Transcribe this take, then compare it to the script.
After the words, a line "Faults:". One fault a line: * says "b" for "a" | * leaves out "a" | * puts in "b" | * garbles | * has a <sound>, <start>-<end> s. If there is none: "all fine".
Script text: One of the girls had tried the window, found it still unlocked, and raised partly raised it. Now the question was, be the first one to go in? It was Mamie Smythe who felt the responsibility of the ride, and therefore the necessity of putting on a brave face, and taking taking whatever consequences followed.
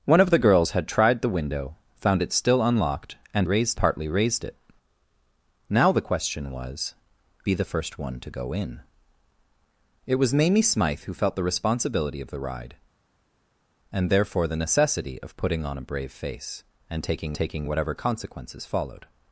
One of the girls had tried the window, found it still unlocked, and raised partly raised it. Now the question was, be the first one to go in? It was Mamie Smythe who felt the responsibility of the ride, and therefore the necessity of putting on a brave face, and taking taking whatever consequences followed.
Faults:
all fine